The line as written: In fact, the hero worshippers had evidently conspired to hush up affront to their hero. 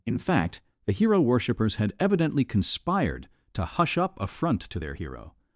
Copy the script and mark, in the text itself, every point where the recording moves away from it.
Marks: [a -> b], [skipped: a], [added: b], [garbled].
In fact, the hero worshippers had evidently conspired to hush up affront to their hero.